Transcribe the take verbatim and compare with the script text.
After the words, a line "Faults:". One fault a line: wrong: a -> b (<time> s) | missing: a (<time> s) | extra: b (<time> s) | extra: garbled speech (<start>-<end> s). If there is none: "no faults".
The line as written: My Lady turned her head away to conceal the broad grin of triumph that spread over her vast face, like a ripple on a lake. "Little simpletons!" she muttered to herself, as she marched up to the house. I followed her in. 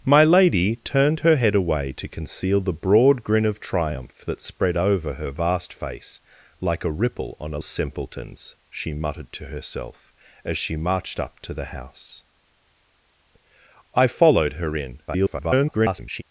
My Lady turned her head away to conceal the broad grin of triumph that spread over her vast face, like a ripple on a simpletons!" she muttered to herself, as she marched up to the house. I followed her in. [garbled]
Faults:
missing: lake Little (7.6 s)
extra: garbled speech (15.1-16.2 s)